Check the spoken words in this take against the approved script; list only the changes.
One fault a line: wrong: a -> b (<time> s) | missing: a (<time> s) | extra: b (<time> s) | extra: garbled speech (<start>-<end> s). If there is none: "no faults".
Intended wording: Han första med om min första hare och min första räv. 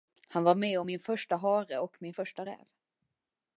wrong: första -> var (0.4 s)